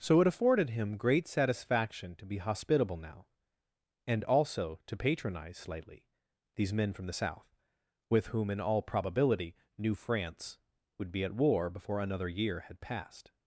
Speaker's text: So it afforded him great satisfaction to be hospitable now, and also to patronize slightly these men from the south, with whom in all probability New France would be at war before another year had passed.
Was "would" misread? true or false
false